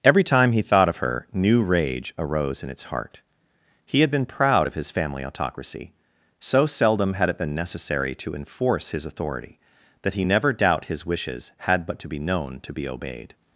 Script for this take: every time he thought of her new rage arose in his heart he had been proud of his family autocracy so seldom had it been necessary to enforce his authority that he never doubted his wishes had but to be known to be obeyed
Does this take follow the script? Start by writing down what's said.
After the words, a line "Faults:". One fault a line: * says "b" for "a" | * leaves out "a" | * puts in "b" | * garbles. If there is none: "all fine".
every time he thought of her new rage arose in its heart he had been proud of his family autocracy so seldom had it been necessary to enforce his authority that he never doubt his wishes had but to be known to be obeyed
Faults:
* says "its" for "his"
* says "doubt" for "doubted"